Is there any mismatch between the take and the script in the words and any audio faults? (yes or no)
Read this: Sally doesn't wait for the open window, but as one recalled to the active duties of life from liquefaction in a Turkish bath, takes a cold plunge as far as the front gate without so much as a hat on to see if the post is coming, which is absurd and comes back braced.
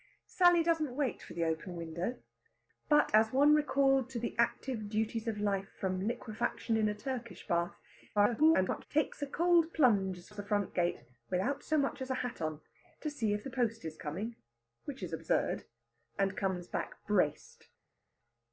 yes